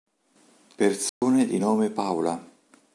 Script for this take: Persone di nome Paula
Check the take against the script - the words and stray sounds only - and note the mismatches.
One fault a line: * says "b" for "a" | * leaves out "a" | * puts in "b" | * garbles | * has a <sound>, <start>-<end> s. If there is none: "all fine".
* has a dropout, 1.1-1.2 s